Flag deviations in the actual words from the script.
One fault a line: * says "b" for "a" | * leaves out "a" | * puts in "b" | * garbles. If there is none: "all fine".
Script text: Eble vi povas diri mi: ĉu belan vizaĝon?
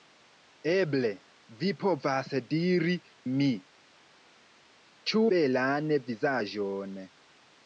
all fine